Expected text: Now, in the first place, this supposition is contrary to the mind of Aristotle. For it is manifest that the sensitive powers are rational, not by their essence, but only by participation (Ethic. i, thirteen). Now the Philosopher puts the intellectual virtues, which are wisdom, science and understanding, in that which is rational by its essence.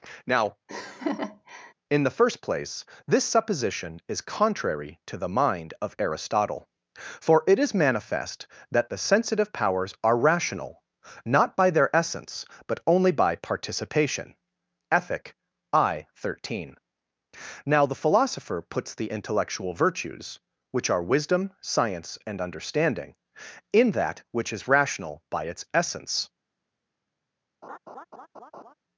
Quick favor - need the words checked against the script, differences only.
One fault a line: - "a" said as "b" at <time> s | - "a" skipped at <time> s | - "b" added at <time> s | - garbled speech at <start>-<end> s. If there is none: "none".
none